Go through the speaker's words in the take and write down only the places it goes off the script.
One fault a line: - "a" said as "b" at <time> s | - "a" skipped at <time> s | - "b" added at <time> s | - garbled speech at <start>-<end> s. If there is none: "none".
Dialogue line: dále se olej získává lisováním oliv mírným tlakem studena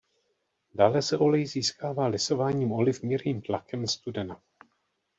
none